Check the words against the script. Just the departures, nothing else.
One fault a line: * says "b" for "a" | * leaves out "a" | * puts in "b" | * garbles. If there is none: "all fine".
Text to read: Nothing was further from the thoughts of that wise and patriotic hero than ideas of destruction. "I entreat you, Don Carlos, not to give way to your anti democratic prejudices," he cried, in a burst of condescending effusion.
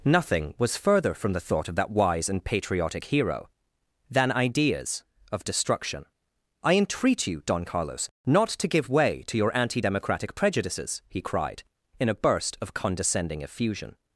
* says "thought" for "thoughts"